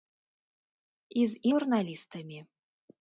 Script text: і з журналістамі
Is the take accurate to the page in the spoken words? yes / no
yes